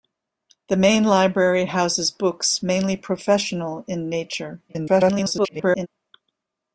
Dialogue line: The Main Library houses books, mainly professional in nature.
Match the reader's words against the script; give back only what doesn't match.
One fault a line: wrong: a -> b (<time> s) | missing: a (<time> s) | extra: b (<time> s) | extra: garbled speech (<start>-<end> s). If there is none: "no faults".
extra: garbled speech (4.7-5.9 s)